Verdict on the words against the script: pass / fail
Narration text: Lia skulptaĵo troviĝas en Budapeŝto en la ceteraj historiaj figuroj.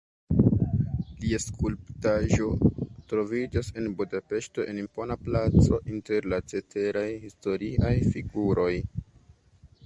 fail